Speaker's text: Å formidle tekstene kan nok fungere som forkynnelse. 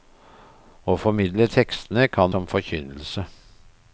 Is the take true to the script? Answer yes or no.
no